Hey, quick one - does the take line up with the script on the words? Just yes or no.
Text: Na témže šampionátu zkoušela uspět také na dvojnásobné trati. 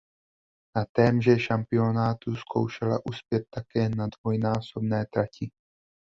yes